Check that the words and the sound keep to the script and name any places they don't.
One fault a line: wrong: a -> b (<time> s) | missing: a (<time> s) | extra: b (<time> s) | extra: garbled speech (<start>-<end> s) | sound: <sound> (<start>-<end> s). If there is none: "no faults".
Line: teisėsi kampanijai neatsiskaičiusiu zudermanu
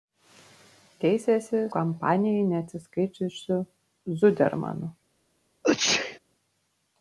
sound: sneeze (5.6-6.2 s)